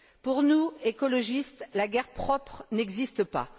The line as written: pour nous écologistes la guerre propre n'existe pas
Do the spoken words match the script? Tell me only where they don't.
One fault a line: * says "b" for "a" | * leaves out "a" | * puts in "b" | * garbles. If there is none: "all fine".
all fine